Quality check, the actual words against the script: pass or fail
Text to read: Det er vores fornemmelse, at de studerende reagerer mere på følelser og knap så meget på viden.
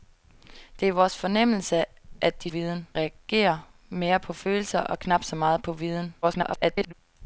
fail